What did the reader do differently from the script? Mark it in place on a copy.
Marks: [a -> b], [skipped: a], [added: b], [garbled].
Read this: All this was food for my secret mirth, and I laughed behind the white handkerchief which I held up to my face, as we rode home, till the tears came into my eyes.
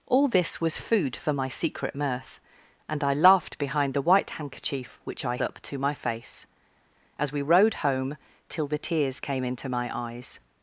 All this was food for my secret mirth, and I laughed behind the white handkerchief which I [skipped: held] up to my face, as we rode home, till the tears came into my eyes.